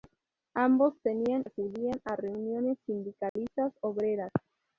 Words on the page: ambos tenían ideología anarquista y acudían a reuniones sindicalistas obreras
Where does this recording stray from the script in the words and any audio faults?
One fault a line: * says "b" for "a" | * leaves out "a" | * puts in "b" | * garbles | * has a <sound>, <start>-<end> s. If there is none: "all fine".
* leaves out "ideología anarquista y"
* has a dropout, 3.3-3.4 s